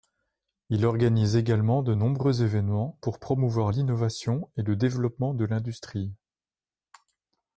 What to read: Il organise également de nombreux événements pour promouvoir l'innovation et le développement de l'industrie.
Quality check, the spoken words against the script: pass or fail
pass